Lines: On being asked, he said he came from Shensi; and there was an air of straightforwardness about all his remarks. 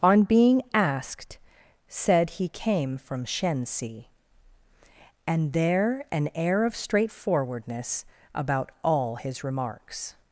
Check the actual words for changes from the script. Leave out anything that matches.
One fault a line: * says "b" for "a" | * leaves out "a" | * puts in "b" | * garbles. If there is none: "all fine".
* leaves out "he"
* leaves out "was"